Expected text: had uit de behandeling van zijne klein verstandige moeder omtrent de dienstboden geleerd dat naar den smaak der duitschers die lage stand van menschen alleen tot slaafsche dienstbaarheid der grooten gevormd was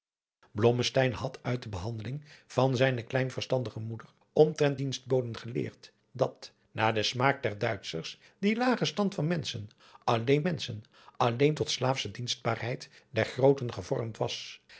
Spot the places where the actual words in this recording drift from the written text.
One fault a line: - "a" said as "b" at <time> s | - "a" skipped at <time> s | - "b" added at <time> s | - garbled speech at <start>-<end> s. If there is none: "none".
- "de" skipped at 4.8 s
- "menschen alleen" added at 10.4 s